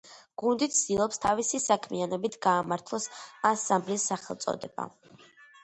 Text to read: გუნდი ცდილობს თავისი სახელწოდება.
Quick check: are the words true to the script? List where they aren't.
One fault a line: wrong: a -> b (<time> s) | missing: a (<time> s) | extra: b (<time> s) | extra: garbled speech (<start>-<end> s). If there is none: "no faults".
extra: საქმიანობით გაამართლოს ანსამბლის (1.6 s)